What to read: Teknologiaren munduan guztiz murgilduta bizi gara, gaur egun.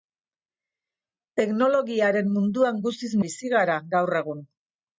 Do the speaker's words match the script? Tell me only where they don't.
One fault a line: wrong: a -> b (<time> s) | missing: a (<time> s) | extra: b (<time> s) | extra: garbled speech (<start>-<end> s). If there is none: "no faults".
missing: murgilduta (3.1 s)